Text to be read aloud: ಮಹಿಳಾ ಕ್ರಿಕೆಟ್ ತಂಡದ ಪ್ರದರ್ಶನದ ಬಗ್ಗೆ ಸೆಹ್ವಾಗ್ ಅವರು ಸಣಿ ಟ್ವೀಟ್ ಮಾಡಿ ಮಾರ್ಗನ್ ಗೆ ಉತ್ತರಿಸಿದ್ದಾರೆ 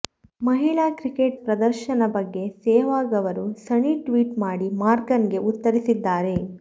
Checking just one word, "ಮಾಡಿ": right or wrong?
right